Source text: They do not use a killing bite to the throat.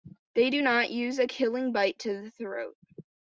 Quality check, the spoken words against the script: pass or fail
pass